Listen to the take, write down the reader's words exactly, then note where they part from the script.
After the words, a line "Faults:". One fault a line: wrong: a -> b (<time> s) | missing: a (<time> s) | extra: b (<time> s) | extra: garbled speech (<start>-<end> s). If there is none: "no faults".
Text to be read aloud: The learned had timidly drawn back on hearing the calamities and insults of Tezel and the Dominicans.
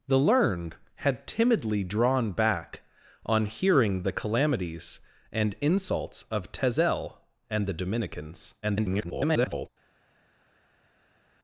The learned had timidly drawn back on hearing the calamities and insults of Tezel and the Dominicans. [garbled]
Faults:
extra: garbled speech (8.6-9.7 s)